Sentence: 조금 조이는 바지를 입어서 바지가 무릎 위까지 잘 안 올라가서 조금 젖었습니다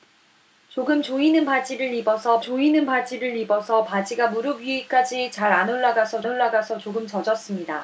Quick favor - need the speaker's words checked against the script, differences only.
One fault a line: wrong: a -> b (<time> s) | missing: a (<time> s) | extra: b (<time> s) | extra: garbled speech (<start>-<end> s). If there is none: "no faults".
extra: 조이는 바지를 입어서 (2.4 s)
extra: 올라가서 (6.3 s)